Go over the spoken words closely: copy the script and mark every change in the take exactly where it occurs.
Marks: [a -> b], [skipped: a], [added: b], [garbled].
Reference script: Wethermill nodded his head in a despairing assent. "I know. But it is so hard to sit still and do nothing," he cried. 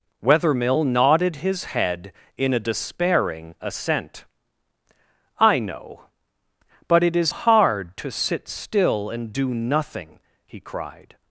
Wethermill nodded his head in a despairing assent. "I know. But it is [skipped: so] hard to sit still and do nothing," he cried.